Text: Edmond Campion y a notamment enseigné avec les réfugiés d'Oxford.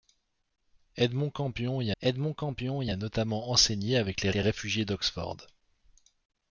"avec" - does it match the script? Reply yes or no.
yes